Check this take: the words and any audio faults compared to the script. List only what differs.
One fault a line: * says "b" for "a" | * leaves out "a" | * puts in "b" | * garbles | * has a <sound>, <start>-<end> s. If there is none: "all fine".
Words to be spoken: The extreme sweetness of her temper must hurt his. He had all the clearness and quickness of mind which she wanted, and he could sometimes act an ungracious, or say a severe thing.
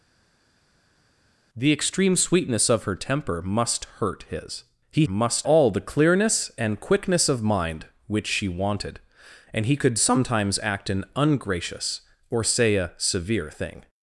* says "must" for "had"